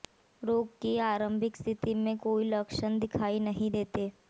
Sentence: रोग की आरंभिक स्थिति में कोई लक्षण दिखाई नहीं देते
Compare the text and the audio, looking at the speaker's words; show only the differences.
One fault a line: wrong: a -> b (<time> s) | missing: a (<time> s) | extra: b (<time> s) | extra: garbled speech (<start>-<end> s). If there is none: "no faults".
no faults